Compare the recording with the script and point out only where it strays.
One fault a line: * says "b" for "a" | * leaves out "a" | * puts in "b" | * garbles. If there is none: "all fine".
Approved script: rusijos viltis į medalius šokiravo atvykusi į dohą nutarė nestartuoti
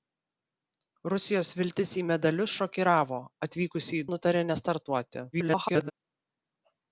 * leaves out "dohą"
* garbles